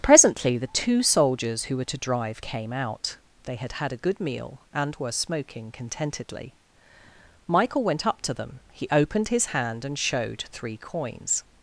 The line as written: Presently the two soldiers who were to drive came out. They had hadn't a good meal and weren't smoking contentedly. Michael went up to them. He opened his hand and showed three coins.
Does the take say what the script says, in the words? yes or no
no